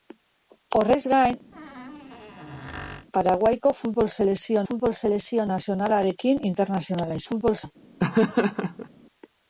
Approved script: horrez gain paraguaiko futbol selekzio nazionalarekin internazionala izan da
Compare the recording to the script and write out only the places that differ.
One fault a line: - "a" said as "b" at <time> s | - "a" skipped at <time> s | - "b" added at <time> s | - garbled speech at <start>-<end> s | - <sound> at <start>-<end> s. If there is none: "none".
- squeak at 1.5-3.1 s
- "futbol selekzio" added at 4.7 s
- "izan" said as "futbol" at 7.3 s
- laugh at 8.0-8.9 s